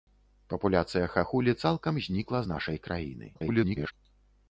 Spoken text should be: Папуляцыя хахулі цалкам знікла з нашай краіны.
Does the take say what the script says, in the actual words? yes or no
no